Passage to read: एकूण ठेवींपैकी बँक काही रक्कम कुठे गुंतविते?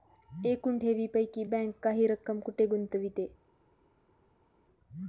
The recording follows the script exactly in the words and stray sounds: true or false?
true